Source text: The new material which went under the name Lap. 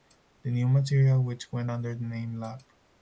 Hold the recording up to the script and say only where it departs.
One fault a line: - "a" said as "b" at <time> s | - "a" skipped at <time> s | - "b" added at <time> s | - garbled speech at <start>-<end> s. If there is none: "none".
none